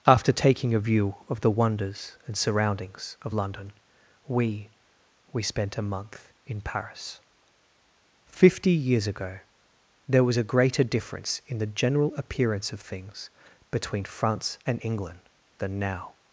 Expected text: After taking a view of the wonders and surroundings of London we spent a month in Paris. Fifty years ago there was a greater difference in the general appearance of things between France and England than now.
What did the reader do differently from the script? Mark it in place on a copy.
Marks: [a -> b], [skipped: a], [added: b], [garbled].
After taking a view of the wonders and surroundings of London we [added: we] spent a month in Paris. Fifty years ago there was a greater difference in the general appearance of things between France and England than now.